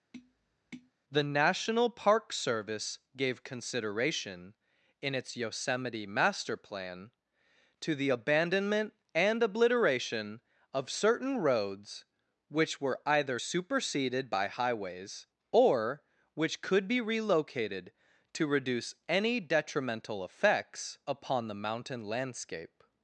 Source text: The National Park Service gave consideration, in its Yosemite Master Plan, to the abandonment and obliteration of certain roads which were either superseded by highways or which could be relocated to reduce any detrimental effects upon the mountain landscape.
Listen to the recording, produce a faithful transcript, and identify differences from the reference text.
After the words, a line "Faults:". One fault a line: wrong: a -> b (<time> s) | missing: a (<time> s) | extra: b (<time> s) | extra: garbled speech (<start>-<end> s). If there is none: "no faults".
The National Park Service gave consideration, in its Yosemite Master Plan, to the abandonment and obliteration of certain roads which were either superseded by highways or which could be relocated to reduce any detrimental effects upon the mountain landscape.
Faults:
no faults